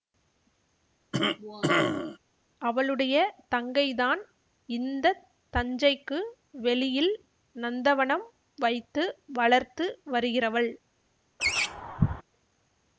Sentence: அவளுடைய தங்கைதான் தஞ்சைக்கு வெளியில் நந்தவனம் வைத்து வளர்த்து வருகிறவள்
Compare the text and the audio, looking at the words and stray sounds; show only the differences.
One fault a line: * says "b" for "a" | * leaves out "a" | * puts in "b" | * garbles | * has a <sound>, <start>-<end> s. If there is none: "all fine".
* has a cough, 1.1-2.2 s
* puts in "இந்த"
* has a laugh, 11.4-12.2 s